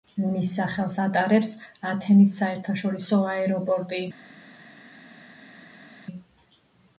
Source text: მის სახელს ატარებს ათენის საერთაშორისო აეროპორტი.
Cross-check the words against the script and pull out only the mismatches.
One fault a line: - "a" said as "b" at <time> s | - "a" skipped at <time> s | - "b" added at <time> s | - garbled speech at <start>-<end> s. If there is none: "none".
none